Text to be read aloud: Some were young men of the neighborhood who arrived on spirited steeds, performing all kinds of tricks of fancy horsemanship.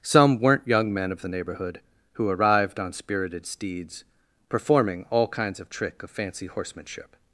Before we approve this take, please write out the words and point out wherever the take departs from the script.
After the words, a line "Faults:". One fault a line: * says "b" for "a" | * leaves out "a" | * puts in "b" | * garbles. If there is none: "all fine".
Some weren't young men of the neighborhood who arrived on spirited steeds, performing all kinds of trick of fancy horsemanship.
Faults:
* says "weren't" for "were"
* says "trick" for "tricks"